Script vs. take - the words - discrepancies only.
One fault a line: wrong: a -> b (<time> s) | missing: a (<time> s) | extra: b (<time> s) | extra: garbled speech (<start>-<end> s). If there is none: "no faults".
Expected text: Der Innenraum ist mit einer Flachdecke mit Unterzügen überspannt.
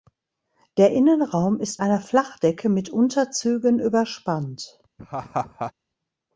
missing: mit (1.8 s)